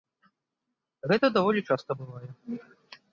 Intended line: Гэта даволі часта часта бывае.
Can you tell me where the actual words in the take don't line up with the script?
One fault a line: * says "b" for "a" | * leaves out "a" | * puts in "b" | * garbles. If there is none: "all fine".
* leaves out "часта"